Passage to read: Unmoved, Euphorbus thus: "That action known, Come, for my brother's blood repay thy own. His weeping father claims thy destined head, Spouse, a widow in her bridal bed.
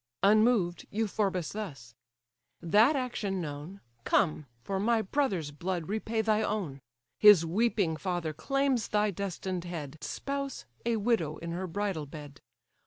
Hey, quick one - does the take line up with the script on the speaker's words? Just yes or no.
yes